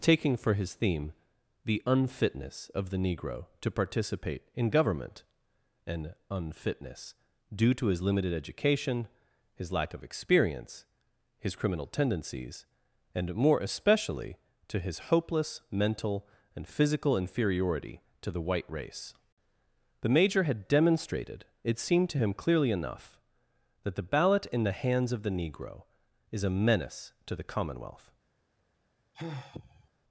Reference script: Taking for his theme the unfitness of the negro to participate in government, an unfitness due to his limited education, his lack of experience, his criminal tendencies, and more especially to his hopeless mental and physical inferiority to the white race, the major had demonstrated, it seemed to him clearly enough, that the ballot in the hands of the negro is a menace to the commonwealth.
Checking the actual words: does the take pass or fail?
pass